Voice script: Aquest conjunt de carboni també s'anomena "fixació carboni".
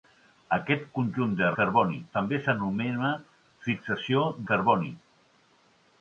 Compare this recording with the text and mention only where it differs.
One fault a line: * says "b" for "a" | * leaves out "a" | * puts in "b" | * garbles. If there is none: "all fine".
all fine